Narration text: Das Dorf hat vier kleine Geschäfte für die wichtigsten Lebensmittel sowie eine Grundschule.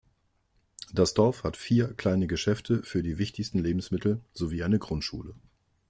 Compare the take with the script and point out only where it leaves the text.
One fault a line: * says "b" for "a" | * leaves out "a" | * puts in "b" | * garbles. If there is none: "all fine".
all fine